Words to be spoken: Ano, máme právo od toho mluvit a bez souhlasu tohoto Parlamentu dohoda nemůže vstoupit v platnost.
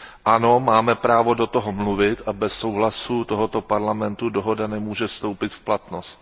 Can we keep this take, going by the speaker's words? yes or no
no